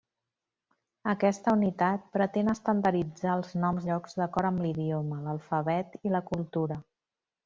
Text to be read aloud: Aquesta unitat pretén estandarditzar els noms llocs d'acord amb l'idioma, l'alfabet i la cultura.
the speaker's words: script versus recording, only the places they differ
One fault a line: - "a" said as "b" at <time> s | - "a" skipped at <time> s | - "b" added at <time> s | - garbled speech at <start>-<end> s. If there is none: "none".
none